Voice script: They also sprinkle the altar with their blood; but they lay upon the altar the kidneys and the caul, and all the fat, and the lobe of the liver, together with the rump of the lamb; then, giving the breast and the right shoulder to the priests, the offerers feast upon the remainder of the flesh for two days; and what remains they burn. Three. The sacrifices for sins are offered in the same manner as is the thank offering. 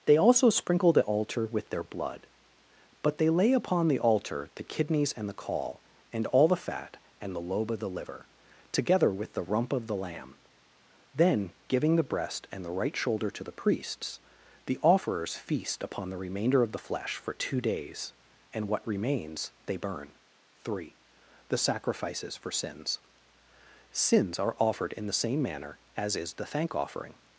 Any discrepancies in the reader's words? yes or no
yes